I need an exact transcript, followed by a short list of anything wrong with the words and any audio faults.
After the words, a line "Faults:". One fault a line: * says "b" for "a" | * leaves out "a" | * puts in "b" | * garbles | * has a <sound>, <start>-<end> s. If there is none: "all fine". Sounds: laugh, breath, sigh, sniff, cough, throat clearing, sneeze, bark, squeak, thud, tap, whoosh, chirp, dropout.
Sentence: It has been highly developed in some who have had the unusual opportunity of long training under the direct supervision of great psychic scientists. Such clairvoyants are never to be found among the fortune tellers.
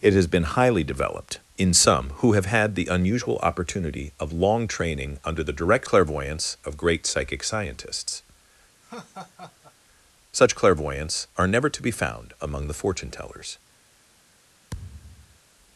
It has been highly developed in some who have had the unusual opportunity of long training under the direct clairvoyants of great psychic scientists. Such clairvoyants are never to be found among the fortune tellers.
Faults:
* says "clairvoyants" for "supervision"
* has a laugh, 8.8-9.7 s
* has a thud, 14.7-15.4 s